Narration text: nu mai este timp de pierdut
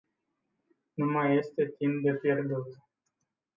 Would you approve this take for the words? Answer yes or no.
yes